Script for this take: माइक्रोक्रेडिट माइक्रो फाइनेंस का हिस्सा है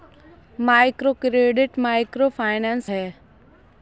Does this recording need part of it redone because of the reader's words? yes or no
yes